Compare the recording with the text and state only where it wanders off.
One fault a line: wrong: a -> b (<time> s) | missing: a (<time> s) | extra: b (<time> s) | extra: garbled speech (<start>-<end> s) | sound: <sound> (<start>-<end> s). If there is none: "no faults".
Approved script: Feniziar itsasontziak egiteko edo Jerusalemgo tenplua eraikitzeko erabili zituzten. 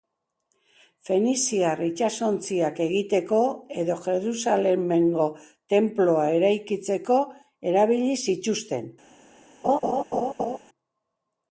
sound: laugh (9.6-10.6 s)